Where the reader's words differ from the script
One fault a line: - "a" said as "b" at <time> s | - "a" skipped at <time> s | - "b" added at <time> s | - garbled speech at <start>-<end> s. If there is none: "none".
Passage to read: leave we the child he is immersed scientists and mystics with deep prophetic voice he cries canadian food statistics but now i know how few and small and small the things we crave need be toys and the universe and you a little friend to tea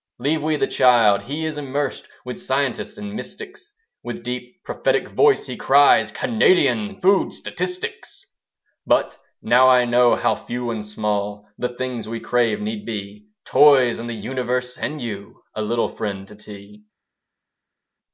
- "with" added at 2.2 s
- "and small" skipped at 11.5 s